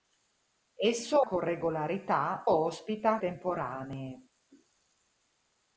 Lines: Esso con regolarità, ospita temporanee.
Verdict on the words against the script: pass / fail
pass